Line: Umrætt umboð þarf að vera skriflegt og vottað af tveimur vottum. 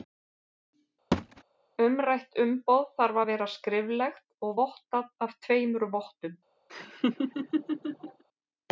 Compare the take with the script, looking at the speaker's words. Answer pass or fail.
pass